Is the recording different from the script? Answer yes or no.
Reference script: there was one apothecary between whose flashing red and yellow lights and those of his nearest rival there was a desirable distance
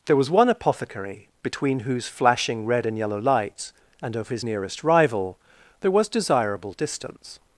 yes